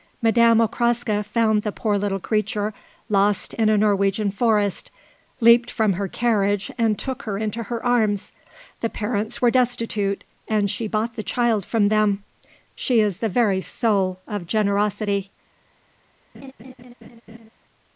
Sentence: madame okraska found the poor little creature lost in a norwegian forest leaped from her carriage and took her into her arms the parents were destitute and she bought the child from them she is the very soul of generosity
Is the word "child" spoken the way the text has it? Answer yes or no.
yes